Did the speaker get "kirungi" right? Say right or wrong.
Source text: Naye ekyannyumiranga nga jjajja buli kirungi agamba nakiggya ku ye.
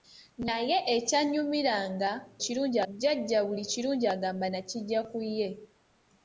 right